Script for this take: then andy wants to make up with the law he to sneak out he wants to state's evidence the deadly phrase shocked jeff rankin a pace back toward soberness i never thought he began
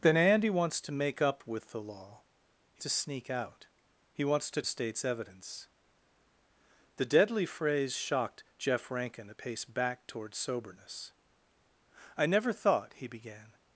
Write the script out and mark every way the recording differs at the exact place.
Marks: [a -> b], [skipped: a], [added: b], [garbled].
then andy wants to make up with the law he to sneak out he wants to state's evidence the deadly phrase shocked jeff rankin a pace back toward soberness i never thought he began